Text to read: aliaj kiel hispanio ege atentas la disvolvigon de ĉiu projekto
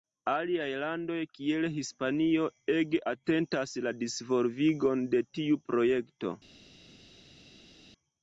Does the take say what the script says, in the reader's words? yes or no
no